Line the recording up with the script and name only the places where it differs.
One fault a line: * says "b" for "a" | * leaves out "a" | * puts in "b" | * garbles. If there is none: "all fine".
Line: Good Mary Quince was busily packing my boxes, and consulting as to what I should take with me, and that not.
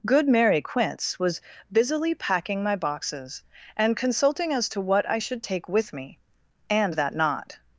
all fine